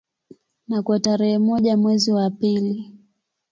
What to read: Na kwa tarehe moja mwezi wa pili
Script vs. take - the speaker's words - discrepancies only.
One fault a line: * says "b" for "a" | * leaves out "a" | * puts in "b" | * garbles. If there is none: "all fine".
all fine